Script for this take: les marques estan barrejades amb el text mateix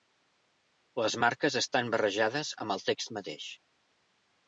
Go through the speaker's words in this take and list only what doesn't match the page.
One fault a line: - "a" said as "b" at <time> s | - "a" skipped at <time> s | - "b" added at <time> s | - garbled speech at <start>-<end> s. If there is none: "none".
none